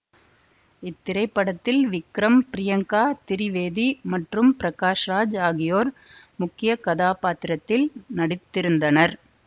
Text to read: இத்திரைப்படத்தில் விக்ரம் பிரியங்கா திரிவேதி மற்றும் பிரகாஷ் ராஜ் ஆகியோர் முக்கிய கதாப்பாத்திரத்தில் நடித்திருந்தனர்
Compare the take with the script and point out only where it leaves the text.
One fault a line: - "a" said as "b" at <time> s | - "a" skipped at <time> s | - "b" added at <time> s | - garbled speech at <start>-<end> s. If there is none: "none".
none